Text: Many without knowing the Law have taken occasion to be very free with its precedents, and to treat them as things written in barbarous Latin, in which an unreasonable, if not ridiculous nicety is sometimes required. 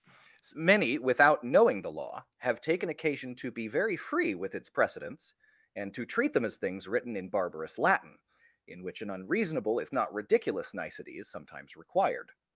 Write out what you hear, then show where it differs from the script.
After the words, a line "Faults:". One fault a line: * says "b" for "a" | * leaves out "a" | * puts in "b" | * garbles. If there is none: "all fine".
Many without knowing the Law have taken occasion to be very free with its precedents, and to treat them as things written in barbarous Latin, in which an unreasonable, if not ridiculous nicety is sometimes required.
Faults:
all fine